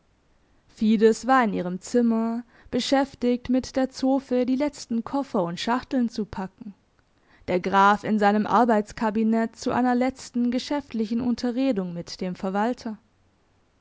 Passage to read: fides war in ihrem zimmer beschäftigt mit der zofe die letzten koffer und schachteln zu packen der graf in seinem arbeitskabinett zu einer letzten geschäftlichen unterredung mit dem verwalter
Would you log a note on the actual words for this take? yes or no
no